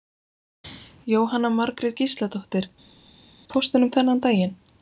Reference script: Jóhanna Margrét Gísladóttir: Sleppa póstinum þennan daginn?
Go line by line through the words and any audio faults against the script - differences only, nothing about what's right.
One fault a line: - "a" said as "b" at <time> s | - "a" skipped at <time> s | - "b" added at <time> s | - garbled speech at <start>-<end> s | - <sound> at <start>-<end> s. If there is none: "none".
- "Sleppa" skipped at 2.7 s